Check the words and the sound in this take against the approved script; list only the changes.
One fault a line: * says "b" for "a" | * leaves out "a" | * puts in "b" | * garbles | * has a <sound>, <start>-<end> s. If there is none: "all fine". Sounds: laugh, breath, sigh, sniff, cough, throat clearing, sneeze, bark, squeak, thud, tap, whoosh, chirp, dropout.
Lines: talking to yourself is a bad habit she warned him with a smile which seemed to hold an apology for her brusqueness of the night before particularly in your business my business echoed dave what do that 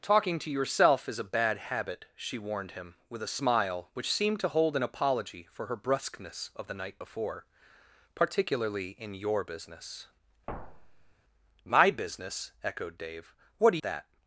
* has a thud, 10.5-11.1 s